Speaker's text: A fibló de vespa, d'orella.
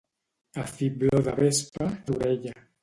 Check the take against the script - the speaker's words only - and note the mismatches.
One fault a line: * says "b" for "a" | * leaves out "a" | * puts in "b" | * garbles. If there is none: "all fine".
all fine